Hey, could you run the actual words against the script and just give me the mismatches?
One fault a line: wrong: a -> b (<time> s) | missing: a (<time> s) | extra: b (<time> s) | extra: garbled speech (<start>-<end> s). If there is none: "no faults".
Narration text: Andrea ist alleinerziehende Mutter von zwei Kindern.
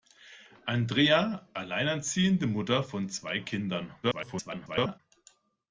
missing: ist (1.5 s)
extra: garbled speech (4.0-5.0 s)